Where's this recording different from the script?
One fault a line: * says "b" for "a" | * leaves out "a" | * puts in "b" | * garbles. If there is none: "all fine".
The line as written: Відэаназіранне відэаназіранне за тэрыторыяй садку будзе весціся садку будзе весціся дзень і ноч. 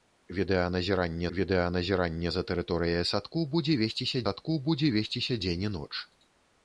all fine